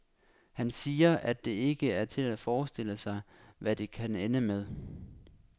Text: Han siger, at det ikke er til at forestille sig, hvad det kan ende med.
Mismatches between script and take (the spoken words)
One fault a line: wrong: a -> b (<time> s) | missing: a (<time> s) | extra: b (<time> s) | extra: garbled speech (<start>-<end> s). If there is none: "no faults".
no faults